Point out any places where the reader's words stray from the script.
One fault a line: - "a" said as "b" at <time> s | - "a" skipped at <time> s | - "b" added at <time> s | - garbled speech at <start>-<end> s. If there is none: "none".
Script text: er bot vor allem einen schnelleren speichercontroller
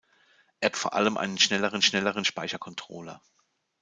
- "bot" skipped at 0.7 s
- "schnelleren" added at 1.8 s